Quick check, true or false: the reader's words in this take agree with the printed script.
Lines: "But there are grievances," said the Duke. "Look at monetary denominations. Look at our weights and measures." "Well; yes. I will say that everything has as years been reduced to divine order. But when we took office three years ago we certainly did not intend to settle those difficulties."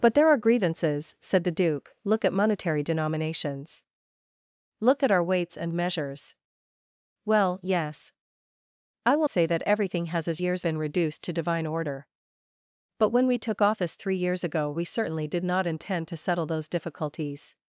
true